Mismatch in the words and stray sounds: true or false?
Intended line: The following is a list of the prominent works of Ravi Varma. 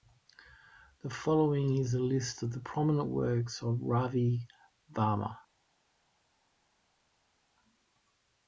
false